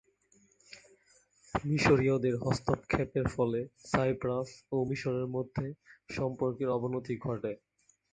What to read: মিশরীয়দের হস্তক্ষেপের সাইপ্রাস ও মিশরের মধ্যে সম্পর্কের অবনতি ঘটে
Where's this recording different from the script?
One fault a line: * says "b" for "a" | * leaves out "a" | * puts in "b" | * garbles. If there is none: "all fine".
* puts in "ফলে"